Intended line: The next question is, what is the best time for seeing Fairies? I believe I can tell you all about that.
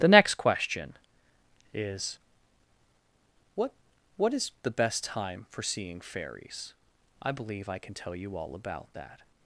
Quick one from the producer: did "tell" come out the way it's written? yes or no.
yes